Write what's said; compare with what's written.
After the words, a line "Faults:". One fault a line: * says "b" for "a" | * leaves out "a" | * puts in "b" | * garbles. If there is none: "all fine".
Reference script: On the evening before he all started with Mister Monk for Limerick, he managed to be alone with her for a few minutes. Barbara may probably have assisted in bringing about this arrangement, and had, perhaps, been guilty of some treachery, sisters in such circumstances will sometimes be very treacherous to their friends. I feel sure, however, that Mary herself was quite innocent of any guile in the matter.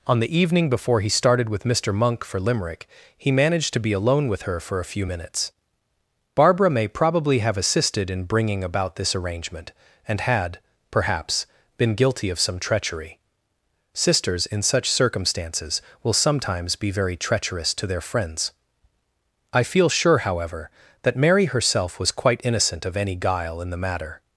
On the evening before he started with Mister Monk for Limerick, he managed to be alone with her for a few minutes. Barbara may probably have assisted in bringing about this arrangement, and had, perhaps, been guilty of some treachery, sisters in such circumstances will sometimes be very treacherous to their friends. I feel sure, however, that Mary herself was quite innocent of any guile in the matter.
Faults:
* leaves out "all"